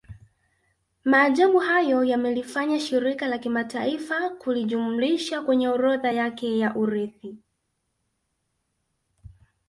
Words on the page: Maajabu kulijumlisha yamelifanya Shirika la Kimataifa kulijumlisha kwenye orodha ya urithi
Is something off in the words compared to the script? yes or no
yes